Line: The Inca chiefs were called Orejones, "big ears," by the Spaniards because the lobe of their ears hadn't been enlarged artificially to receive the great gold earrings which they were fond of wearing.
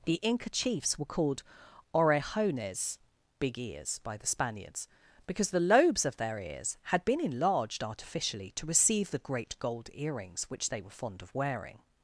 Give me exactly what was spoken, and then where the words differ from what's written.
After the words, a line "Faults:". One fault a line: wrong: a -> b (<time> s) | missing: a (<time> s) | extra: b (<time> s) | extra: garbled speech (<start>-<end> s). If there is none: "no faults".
The Inca chiefs were called Orejones, "big ears," by the Spaniards because the lobes of their ears had been enlarged artificially to receive the great gold earrings which they were fond of wearing.
Faults:
wrong: lobe -> lobes (5.6 s)
wrong: hadn't -> had (6.8 s)